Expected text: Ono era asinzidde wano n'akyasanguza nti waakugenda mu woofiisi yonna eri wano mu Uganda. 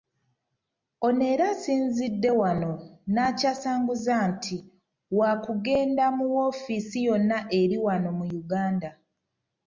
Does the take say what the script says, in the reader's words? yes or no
yes